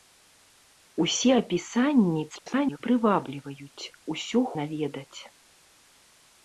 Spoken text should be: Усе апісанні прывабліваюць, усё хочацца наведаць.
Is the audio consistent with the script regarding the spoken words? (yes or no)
no